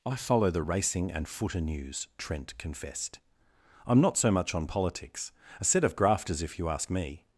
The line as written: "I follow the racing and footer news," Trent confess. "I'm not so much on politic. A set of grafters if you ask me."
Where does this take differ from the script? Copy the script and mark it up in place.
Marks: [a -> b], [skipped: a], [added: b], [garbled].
"I follow the racing and footer news," Trent [confess. -> confessed] "I'm not so much on [politic. -> politics] A set of grafters if you ask me."